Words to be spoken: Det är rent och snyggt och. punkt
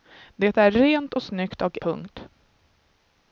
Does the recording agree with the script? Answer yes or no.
yes